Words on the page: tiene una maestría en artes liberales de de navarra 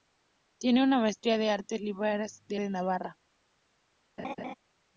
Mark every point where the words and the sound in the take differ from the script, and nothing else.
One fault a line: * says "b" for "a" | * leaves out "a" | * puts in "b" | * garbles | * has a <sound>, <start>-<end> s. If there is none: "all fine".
* has a laugh, 4.2-4.5 s